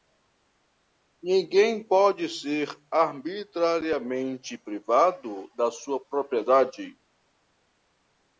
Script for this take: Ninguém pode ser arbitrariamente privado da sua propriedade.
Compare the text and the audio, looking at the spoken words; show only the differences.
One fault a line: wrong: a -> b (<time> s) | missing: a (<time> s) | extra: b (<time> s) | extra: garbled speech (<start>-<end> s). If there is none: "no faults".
no faults